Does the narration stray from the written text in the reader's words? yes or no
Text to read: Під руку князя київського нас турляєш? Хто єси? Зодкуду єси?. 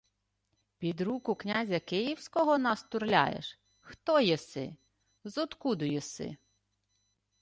no